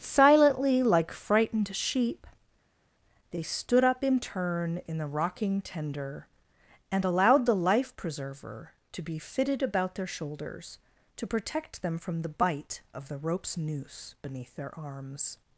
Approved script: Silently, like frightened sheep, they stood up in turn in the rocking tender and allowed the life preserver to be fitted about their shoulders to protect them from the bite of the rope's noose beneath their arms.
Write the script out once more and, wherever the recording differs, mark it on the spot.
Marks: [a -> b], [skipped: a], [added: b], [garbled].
Silently, like frightened sheep, they stood up in turn in the rocking tender and allowed the life preserver to be fitted about their shoulders to protect them from the bite of the rope's noose beneath their arms.